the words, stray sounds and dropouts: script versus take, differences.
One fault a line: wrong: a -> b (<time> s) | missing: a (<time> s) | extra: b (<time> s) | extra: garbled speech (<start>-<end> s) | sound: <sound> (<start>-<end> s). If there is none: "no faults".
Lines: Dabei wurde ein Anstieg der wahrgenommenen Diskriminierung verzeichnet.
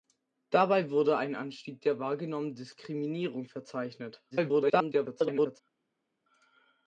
extra: garbled speech (4.3-5.6 s)